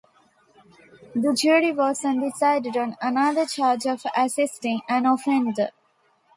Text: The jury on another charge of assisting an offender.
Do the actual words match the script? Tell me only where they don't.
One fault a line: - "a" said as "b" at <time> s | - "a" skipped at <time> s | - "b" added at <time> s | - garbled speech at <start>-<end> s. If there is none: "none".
- "was undecided" added at 1.7 s